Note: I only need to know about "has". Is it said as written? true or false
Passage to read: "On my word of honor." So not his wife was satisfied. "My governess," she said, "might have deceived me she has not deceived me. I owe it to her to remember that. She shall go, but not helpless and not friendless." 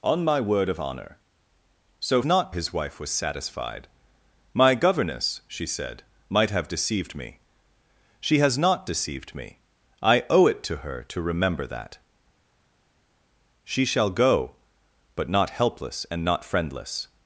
true